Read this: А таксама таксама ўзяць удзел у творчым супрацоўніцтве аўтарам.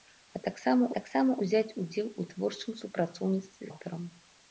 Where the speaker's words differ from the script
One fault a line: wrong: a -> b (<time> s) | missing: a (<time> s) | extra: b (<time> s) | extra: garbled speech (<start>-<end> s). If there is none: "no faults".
no faults